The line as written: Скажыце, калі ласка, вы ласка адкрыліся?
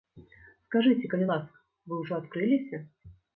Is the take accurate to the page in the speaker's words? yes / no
no